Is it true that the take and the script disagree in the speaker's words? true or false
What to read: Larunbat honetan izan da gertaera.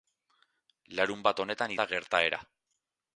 true